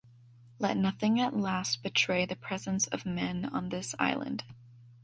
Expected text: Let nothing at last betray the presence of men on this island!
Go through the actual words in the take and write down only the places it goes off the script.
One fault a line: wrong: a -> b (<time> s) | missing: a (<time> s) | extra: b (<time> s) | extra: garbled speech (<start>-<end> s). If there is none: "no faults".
no faults